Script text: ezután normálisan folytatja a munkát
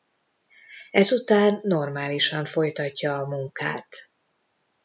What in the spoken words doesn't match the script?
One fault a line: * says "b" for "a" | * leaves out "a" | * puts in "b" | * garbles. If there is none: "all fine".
all fine